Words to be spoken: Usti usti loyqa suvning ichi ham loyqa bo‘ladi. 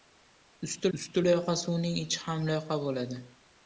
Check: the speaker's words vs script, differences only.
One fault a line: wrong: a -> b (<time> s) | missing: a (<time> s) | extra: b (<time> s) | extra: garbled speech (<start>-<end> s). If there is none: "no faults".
no faults